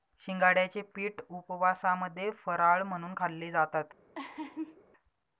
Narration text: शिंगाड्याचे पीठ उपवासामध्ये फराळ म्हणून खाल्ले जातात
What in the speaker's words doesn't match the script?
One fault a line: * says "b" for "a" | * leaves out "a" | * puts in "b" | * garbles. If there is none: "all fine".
all fine